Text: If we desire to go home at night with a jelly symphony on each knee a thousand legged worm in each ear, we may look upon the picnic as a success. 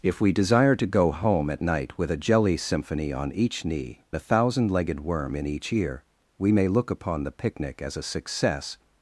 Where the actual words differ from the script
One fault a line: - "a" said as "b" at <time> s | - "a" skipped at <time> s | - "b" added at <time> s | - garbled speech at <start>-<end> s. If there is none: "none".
none